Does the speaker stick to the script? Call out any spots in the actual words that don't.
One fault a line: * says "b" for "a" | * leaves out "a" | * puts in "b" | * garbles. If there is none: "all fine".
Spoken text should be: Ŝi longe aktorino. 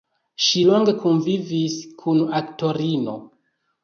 * puts in "kunvivis kun"